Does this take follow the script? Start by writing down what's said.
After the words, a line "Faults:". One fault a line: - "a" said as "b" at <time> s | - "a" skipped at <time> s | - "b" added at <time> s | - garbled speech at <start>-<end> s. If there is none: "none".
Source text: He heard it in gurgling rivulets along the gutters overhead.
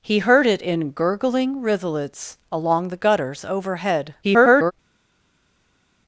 He heard it in gurgling rivulets along the gutters overhead. [garbled]
Faults:
- garbled speech at 4.2-4.7 s